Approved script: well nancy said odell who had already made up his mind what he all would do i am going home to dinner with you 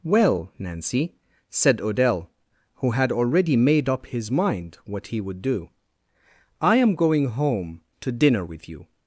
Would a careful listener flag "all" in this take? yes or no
yes